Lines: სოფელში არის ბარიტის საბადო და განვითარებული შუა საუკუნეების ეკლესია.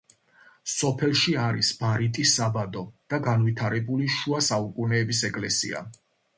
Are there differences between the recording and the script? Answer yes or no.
no